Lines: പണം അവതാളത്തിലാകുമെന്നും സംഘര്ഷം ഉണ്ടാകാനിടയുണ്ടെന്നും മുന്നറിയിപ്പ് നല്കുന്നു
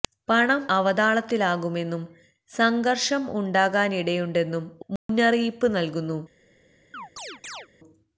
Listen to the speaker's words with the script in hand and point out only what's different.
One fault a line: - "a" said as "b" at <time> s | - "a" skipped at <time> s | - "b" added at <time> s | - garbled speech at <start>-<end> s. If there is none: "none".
none